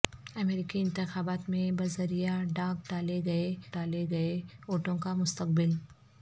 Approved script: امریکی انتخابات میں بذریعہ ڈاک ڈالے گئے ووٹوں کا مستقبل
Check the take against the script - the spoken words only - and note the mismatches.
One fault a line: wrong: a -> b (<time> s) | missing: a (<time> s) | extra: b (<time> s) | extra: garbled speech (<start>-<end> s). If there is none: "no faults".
extra: ڈالے گئے (3.7 s)